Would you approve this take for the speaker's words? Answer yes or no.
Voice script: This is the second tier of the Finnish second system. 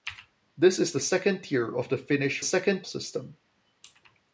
yes